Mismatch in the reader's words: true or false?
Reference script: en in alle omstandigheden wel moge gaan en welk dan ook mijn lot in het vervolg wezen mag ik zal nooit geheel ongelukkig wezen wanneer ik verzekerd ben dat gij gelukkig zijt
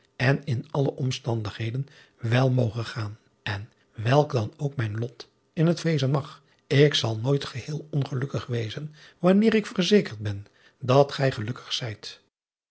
true